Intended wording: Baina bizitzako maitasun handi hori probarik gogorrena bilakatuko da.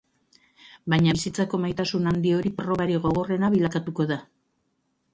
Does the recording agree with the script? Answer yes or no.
yes